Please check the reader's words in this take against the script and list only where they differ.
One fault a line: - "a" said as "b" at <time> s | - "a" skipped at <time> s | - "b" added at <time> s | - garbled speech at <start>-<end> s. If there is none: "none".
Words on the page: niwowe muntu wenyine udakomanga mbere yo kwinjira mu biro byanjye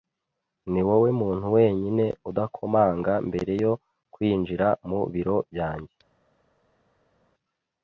none